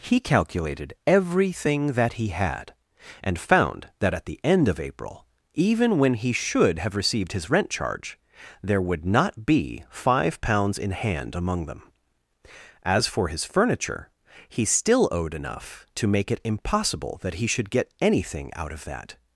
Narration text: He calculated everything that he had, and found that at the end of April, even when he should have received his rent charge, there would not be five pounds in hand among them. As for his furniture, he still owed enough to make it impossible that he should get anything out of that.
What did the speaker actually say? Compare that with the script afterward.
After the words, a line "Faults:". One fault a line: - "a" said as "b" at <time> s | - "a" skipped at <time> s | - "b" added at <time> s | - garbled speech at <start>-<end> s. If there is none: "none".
He calculated everything that he had, and found that at the end of April, even when he should have received his rent charge, there would not be five pounds in hand among them. As for his furniture, he still owed enough to make it impossible that he should get anything out of that.
Faults:
none